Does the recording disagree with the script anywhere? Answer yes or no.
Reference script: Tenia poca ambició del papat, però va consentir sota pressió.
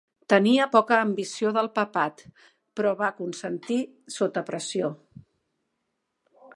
no